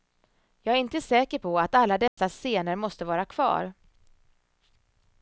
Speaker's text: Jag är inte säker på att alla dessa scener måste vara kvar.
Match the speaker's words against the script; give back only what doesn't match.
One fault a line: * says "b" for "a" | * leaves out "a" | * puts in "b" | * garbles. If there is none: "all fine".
all fine